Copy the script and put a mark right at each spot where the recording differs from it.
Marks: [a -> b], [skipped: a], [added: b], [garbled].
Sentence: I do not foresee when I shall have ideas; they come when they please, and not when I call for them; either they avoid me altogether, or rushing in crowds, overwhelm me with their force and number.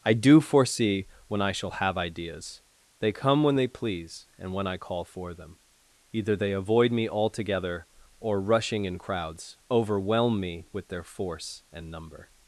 I do [skipped: not] foresee when I shall have ideas; they come when they please, and [skipped: not] when I call for them; either they avoid me altogether, or rushing in crowds, overwhelm me with their force and number.